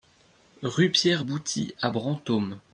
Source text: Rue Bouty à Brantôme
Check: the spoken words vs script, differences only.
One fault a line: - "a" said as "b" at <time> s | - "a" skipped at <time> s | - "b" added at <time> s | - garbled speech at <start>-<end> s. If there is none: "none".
- "Pierre" added at 0.9 s